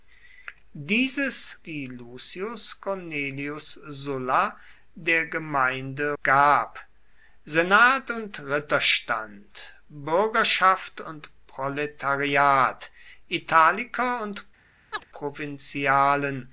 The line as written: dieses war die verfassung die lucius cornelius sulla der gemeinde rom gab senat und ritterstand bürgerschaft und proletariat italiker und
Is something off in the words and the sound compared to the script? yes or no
yes